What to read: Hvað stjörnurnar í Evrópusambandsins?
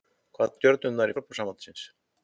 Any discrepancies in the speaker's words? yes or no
no